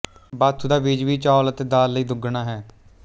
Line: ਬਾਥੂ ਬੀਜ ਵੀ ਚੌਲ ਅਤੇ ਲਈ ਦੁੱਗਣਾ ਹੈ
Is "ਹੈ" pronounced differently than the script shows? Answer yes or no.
no